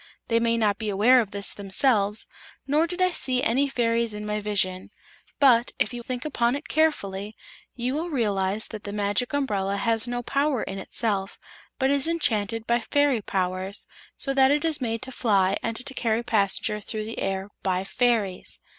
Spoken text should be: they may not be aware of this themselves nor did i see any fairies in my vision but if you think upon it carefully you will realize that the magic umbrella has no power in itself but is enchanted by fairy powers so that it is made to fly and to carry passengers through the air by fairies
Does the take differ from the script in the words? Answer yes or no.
no